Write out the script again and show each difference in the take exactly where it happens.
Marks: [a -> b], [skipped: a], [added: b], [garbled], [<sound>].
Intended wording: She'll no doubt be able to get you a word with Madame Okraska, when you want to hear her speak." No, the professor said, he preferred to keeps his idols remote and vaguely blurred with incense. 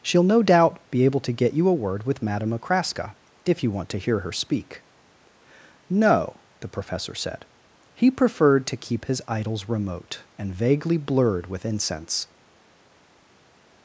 She'll no doubt be able to get you a word with Madame Okraska, [when -> if] you want to hear her speak." No, the professor said, he preferred to [keeps -> keep] his idols remote and vaguely blurred with incense.